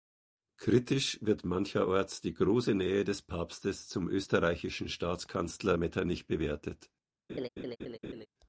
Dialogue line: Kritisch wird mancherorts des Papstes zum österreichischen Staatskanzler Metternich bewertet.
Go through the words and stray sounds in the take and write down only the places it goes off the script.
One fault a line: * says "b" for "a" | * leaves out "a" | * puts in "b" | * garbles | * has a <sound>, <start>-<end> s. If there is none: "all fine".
* puts in "die große Nähe"
* has a laugh, 7.3-8.3 s